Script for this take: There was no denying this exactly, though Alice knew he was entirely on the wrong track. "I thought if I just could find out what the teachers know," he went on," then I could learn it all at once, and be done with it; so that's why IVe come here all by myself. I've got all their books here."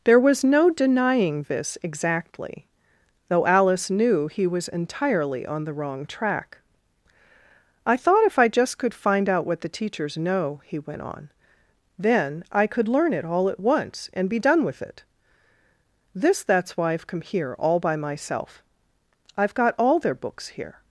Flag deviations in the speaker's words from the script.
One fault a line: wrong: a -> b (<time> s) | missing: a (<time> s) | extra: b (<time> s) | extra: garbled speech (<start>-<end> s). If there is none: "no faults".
wrong: so -> this (16.1 s)